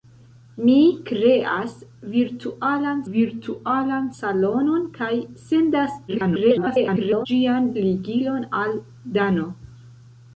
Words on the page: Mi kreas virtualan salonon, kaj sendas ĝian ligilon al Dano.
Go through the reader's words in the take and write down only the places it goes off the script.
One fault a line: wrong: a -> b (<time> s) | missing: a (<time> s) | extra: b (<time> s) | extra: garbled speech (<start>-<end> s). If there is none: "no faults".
extra: virtualan (3.1 s)
extra: garbled speech (6.1-7.3 s)